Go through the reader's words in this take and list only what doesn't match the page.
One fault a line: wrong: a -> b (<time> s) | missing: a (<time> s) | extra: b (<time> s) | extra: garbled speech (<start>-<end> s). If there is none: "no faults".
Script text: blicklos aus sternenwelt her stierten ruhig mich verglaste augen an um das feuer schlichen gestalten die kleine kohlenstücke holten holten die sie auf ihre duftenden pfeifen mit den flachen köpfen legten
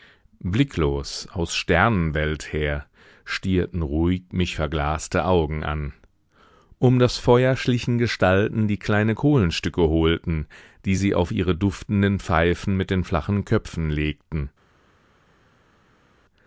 missing: holten (10.5 s)